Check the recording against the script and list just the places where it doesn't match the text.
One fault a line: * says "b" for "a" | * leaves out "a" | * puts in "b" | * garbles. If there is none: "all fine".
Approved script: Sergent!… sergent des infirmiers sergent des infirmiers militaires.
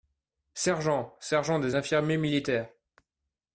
* leaves out "sergent des infirmiers"